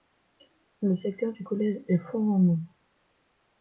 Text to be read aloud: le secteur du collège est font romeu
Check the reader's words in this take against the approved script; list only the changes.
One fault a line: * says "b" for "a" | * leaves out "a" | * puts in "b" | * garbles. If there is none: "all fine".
all fine